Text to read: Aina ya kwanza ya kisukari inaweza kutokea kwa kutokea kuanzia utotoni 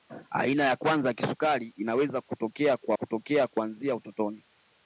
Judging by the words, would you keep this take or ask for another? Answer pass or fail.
pass